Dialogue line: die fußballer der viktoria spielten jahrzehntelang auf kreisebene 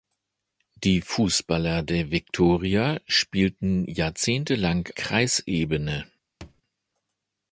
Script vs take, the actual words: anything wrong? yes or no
yes